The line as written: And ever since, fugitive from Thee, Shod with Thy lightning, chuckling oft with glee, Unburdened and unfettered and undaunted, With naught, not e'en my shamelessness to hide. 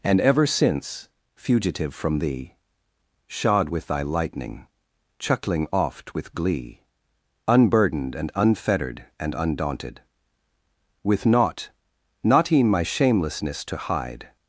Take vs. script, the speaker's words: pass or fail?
pass